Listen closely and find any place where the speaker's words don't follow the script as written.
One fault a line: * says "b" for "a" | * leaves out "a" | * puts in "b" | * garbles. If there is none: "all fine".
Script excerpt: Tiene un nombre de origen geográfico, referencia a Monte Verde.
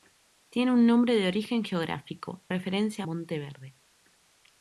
all fine